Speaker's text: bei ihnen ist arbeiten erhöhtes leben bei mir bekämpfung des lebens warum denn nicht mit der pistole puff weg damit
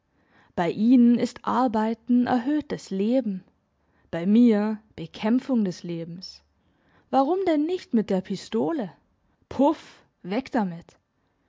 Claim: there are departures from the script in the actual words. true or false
false